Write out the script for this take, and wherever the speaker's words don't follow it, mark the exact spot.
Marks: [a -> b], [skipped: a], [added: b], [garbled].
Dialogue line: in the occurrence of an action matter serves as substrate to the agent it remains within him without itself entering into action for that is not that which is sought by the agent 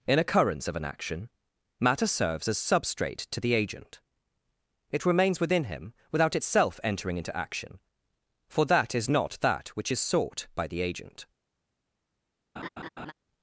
in [skipped: the] occurrence of an action matter serves as substrate to the agent it remains within him without itself entering into action for that is not that which is sought by the agent